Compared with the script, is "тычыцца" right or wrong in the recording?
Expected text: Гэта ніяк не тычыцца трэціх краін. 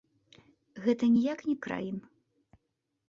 wrong